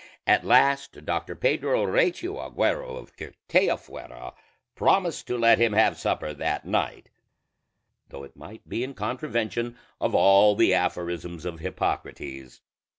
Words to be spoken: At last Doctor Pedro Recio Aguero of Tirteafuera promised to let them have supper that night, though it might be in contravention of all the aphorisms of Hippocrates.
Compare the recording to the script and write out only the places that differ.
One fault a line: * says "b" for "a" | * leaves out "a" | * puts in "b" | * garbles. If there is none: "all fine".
* says "him" for "them"